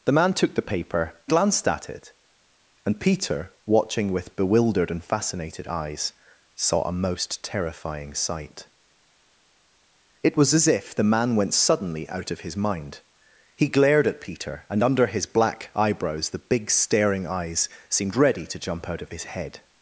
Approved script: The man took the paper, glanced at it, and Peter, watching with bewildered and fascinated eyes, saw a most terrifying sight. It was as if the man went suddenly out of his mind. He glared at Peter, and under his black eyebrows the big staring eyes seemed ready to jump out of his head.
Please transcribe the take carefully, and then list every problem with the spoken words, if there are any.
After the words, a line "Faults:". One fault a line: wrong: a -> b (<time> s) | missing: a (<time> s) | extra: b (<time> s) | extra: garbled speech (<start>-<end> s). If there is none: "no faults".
The man took the paper, glanced at it, and Peter, watching with bewildered and fascinated eyes, saw a most terrifying sight. It was as if the man went suddenly out of his mind. He glared at Peter, and under his black eyebrows the big staring eyes seemed ready to jump out of his head.
Faults:
no faults